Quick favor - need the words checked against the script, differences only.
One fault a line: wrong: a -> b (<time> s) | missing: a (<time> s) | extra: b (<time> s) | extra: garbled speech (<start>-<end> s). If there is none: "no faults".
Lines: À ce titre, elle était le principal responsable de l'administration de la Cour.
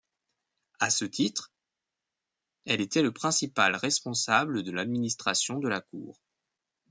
no faults